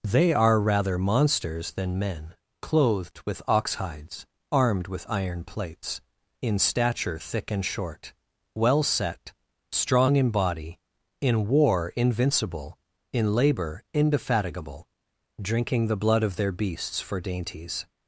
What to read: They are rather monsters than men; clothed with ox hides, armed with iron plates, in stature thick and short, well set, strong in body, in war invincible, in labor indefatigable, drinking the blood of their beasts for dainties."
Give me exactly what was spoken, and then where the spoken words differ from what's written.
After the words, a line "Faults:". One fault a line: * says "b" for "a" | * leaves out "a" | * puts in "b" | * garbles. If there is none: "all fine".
They are rather monsters than men; clothed with ox hides, armed with iron plates, in stature thick and short, well set, strong in body, in war invincible, in labor indefatigable, drinking the blood of their beasts for dainties."
Faults:
all fine